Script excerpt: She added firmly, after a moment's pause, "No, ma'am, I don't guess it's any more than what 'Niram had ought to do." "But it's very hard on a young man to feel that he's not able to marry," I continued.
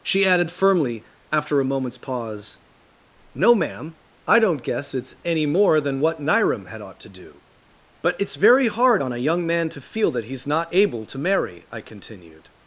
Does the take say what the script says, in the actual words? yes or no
yes